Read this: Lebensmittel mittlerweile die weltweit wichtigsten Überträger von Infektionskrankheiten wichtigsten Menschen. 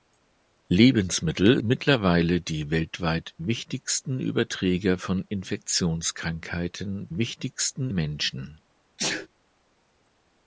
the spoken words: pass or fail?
pass